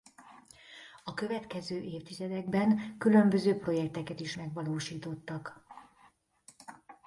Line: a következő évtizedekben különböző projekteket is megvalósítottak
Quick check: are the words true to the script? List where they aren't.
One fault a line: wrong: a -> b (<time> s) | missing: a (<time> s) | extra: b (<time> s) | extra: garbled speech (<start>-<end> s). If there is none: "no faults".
no faults